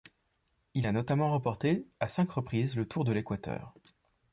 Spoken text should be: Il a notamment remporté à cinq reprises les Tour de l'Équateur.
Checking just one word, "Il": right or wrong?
right